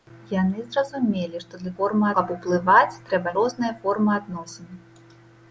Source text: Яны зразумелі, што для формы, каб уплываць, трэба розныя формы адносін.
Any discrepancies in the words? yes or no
no